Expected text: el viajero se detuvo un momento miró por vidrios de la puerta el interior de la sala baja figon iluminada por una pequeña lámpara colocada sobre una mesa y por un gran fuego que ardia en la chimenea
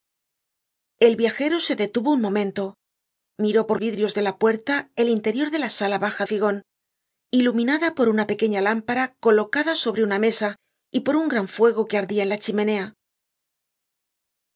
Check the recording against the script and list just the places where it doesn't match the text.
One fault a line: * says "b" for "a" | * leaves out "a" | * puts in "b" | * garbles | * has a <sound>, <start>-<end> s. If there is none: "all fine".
all fine